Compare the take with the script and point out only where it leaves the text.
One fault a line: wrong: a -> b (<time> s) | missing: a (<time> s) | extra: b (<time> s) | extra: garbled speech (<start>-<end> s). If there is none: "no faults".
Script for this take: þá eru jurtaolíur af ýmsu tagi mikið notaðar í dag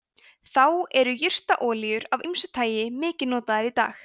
no faults